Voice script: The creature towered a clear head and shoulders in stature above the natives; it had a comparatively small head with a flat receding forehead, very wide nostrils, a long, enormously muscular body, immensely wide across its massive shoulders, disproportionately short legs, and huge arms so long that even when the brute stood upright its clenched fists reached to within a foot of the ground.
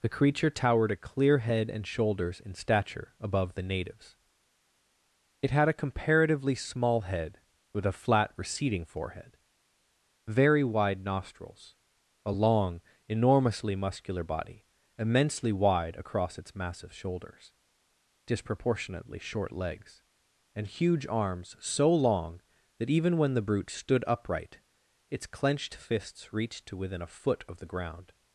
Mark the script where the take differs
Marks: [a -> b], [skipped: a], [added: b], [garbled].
The creature towered a clear head and shoulders in stature above the natives; it had a comparatively small head with a flat receding forehead, very wide nostrils, a long, enormously muscular body, immensely wide across its massive shoulders, disproportionately short legs, and huge arms so long that even when the brute stood upright its clenched fists reached to within a foot of the ground.